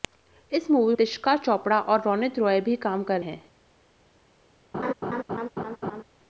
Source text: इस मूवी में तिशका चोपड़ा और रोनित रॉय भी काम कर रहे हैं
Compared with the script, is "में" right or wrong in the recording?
wrong